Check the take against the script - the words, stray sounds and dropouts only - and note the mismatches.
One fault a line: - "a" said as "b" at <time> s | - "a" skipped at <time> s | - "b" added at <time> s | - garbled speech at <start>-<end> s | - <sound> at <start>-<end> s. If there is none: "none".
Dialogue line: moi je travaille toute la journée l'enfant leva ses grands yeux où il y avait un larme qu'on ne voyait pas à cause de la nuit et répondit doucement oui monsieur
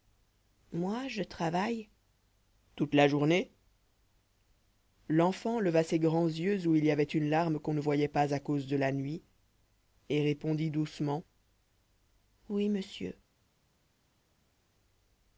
- "un" said as "une" at 7.0 s